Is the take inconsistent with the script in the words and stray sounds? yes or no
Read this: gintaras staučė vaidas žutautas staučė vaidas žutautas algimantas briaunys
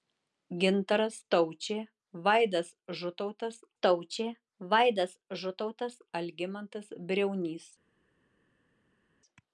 no